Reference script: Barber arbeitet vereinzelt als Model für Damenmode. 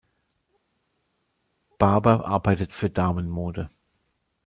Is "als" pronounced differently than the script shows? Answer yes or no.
yes